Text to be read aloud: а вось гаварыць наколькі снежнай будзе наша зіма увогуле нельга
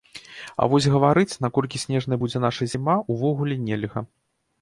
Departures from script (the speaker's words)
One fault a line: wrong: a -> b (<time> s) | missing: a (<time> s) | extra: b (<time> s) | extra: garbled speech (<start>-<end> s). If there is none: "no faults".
no faults